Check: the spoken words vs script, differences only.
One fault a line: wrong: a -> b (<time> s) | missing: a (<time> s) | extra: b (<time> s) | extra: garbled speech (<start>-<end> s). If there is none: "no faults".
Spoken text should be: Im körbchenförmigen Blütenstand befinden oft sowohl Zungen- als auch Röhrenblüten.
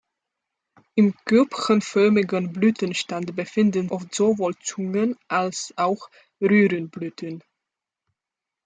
no faults